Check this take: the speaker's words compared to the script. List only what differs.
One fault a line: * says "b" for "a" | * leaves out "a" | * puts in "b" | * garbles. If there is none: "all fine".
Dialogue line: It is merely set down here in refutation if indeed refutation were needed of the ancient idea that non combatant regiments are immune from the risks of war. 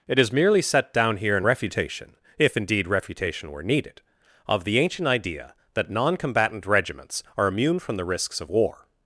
all fine